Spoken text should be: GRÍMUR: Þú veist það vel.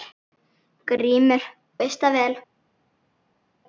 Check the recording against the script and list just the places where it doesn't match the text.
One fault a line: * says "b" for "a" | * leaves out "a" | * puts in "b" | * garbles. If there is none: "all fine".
* leaves out "Þú"